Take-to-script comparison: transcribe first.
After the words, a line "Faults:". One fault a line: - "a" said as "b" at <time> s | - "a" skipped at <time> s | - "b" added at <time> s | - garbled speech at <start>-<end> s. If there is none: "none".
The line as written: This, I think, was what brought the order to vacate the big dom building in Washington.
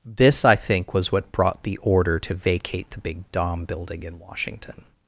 This, I think, was what brought the order to vacate the big dom building in Washington.
Faults:
none